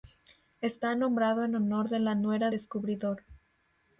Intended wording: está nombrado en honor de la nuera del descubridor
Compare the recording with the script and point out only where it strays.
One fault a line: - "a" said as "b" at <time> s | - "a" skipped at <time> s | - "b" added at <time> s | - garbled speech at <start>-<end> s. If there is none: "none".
- "del" skipped at 2.5 s